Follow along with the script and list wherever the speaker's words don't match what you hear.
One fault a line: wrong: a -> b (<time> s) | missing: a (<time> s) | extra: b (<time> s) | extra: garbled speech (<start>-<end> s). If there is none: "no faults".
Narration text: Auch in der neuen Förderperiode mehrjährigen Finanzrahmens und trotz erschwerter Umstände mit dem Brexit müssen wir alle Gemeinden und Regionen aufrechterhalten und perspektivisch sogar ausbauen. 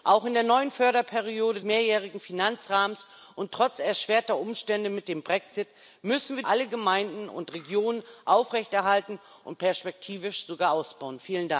no faults